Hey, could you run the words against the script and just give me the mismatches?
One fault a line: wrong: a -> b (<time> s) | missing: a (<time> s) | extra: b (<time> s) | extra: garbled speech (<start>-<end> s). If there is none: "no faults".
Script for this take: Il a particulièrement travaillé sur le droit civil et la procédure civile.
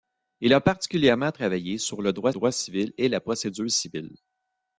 extra: droit (2.3 s)